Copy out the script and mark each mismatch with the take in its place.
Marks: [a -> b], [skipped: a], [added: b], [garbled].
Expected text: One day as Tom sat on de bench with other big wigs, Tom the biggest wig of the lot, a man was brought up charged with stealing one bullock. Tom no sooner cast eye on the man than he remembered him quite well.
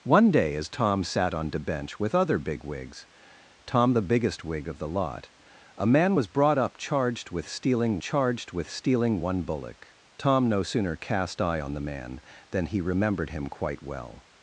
One day as Tom sat on de bench with other big wigs, Tom the biggest wig of the lot, a man was brought up charged with stealing [added: charged with stealing] one bullock. Tom no sooner cast eye on the man than he remembered him quite well.